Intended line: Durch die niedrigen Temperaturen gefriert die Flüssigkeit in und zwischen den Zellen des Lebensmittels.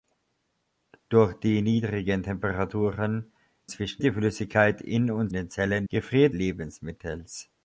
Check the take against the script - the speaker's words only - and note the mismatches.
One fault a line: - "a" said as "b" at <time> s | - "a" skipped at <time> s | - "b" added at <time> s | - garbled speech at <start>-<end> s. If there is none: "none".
- "gefriert" said as "zwischen" at 3.7 s
- "zwischen" skipped at 5.3 s
- "des" said as "gefriert" at 5.9 s